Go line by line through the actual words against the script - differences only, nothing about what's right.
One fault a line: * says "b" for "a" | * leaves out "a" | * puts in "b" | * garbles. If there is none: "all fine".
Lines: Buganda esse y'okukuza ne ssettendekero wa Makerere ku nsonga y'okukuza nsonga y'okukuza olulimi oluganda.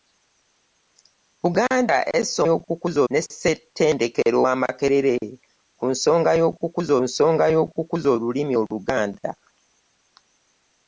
all fine